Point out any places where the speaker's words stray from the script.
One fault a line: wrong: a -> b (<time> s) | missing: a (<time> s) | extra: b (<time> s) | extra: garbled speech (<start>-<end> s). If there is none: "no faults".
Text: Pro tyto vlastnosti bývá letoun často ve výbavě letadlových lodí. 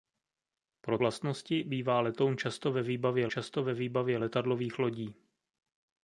missing: tyto (1.0 s)
extra: často ve výbavě (3.3 s)